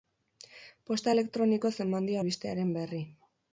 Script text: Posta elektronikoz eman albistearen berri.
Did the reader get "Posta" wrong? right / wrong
right